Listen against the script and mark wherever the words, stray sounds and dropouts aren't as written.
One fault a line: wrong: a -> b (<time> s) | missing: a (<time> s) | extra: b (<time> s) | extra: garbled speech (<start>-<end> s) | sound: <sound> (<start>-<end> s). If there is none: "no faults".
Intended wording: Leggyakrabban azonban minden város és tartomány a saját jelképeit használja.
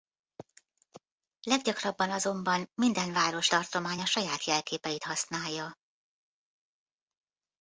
missing: és (3.5 s)